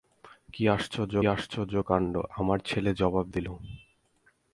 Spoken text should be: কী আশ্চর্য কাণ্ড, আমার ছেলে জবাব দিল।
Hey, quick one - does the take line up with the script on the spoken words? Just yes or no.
no